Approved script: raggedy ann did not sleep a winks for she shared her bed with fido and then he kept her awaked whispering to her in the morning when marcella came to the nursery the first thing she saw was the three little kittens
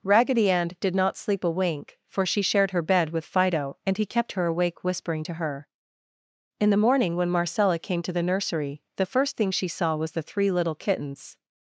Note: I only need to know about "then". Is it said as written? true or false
false